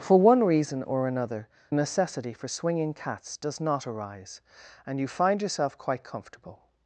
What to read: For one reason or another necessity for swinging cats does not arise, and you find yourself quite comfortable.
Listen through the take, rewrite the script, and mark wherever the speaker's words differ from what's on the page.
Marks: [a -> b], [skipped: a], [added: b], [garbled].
For one reason or another necessity for swinging cats does not arise, and you find yourself quite comfortable.